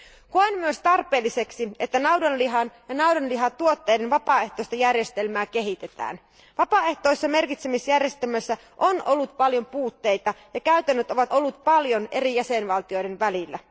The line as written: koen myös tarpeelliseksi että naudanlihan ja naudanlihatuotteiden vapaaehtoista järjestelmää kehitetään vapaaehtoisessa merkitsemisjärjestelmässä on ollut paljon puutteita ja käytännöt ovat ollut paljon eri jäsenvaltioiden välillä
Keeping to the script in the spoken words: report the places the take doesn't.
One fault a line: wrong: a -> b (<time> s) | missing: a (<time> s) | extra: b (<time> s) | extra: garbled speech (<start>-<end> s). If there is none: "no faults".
no faults